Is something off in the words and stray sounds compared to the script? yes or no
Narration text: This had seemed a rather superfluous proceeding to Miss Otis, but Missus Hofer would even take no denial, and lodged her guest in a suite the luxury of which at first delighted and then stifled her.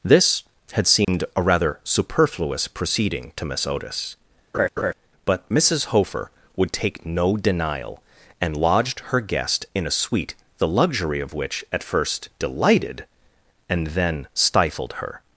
yes